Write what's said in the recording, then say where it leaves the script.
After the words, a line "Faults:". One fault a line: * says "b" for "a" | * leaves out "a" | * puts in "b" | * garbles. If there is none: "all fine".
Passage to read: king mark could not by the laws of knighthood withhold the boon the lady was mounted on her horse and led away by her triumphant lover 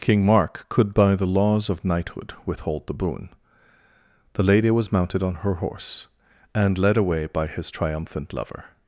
king mark could by the laws of knighthood withhold the boon the lady was mounted on her horse and led away by his triumphant lover
Faults:
* leaves out "not"
* says "his" for "her"